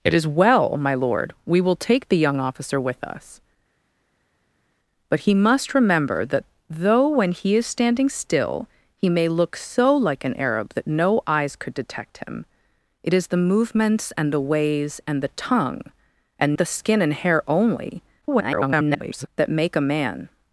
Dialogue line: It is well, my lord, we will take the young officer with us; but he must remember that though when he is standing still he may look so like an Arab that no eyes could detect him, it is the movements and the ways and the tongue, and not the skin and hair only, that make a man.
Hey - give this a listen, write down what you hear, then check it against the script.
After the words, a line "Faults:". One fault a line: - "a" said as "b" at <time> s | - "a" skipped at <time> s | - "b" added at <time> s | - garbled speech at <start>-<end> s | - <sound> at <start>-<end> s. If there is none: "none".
It is well, my lord, we will take the young officer with us; but he must remember that though when he is standing still he may look so like an Arab that no eyes could detect him, it is the movements and the ways and the tongue, and the skin and hair only, [garbled] that make a man.
Faults:
- "not" skipped at 16.6 s
- garbled speech at 18.2-19.3 s